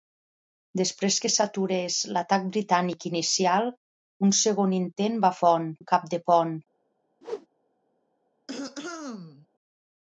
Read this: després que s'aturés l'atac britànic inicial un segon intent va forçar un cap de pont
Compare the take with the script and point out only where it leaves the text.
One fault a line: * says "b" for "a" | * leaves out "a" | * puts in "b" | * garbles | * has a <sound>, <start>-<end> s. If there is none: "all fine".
* says "pont" for "forçar"
* has a whoosh, 7.2-7.5 s
* has a throat clearing, 8.5-9.5 s